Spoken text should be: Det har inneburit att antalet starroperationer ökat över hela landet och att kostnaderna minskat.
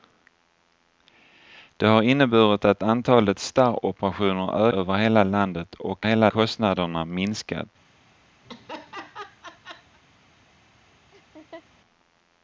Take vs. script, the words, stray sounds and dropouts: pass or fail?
fail